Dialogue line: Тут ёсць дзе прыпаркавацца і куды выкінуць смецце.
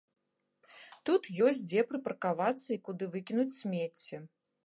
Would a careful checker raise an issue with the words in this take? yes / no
no